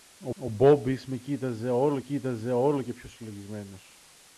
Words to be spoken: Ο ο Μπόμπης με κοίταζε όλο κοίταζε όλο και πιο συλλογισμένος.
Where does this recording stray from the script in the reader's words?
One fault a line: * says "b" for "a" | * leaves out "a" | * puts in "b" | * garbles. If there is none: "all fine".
all fine